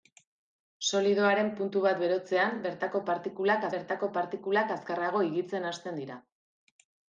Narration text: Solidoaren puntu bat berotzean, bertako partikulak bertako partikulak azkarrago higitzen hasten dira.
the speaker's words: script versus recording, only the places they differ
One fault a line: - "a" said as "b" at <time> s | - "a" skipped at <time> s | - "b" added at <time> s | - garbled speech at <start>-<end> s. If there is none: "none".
none